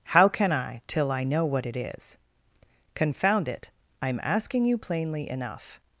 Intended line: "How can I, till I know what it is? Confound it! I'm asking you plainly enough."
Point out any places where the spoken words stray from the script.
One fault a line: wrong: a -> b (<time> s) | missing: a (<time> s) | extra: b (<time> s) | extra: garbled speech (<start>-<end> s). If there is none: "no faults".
no faults